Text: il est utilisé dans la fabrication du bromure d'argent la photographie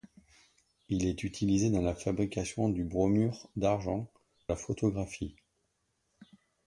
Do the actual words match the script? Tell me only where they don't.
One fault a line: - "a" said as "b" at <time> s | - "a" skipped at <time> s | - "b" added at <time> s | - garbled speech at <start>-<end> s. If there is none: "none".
none